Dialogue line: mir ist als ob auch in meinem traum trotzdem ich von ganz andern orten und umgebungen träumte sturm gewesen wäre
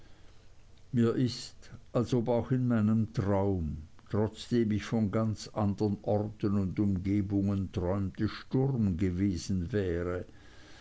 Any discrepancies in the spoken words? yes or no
no